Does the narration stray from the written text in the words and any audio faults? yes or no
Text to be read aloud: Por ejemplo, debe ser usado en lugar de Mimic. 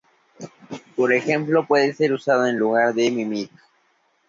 yes